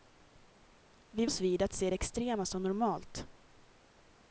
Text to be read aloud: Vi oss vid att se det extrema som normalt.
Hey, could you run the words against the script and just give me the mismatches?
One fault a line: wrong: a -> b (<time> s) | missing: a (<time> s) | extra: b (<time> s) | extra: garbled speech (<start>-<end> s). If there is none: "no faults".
no faults